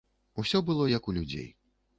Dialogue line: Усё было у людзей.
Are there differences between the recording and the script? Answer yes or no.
yes